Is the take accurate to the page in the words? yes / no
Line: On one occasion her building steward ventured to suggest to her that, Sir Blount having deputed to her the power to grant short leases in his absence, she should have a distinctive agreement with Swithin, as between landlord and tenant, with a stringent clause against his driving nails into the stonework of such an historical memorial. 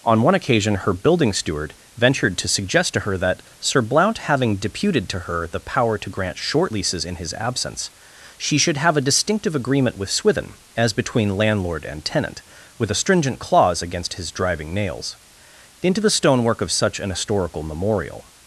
yes